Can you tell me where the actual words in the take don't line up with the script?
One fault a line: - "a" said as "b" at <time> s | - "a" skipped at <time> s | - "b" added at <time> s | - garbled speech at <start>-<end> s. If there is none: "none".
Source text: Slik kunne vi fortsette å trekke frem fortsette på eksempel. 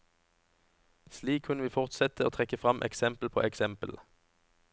- "fortsette" said as "eksempel" at 2.9 s